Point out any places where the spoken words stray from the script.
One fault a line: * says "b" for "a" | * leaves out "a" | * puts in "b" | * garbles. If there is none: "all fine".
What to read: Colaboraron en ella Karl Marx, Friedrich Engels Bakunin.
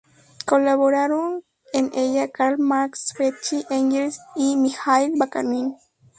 * puts in "y Mijaíl"